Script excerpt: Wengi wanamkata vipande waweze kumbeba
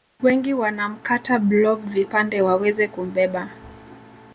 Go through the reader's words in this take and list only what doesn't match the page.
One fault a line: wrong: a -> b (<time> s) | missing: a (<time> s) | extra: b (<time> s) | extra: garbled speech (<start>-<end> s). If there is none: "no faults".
extra: blob (1.4 s)